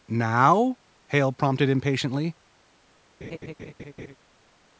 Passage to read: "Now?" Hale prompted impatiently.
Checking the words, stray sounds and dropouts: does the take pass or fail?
fail